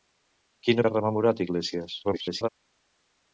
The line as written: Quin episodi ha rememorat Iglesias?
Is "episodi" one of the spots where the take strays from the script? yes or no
yes